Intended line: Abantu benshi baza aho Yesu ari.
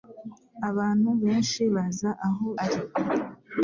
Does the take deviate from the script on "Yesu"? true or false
true